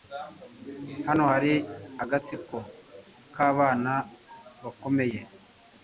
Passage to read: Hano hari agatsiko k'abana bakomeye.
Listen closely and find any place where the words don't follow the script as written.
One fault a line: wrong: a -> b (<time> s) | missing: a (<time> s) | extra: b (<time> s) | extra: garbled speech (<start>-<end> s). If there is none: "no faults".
no faults